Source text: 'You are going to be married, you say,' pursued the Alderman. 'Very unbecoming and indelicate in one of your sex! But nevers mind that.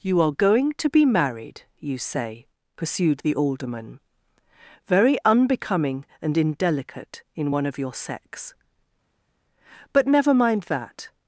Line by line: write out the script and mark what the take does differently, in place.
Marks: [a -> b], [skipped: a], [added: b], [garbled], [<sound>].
'You are going to be married, you say,' pursued the Alderman. 'Very unbecoming and indelicate in one of your sex! But [nevers -> never] mind that.